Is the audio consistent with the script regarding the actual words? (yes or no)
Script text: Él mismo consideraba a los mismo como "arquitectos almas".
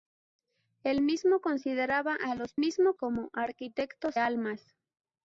yes